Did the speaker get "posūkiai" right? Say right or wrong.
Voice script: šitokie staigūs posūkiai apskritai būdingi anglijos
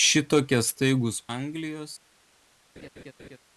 wrong